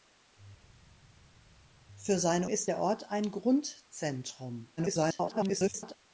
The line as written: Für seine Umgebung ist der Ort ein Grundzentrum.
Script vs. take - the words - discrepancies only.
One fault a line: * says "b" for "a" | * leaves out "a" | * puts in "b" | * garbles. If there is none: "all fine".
* leaves out "Umgebung"
* garbles